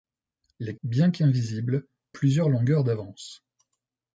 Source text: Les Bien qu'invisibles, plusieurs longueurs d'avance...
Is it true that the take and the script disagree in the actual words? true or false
false